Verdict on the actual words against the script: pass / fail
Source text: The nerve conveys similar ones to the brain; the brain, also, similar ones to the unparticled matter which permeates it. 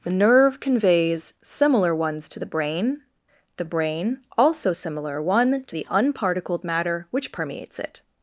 fail